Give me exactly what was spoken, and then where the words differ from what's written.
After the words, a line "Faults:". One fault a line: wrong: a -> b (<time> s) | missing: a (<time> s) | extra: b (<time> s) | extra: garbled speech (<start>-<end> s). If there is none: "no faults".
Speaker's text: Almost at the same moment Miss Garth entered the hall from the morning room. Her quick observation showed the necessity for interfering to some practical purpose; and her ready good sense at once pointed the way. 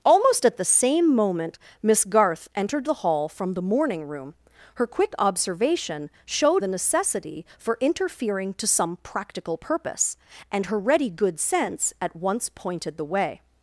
Almost at the same moment Miss Garth entered the hall from the morning room. Her quick observation showed the necessity for interfering to some practical purpose; and her ready good sense at once pointed the way.
Faults:
no faults